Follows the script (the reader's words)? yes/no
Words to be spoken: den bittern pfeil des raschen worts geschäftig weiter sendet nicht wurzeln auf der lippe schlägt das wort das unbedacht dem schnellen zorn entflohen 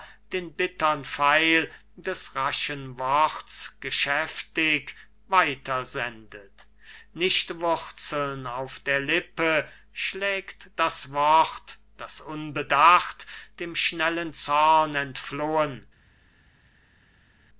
yes